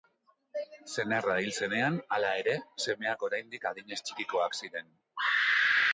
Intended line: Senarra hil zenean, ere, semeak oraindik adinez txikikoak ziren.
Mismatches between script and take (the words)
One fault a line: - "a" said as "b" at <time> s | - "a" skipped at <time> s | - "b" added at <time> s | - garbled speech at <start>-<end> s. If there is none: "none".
- "hala" added at 2.2 s